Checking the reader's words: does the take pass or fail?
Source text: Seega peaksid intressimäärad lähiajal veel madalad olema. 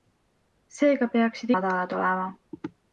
fail